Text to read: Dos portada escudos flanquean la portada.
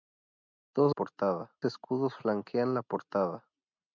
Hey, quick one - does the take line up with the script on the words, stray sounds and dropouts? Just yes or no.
yes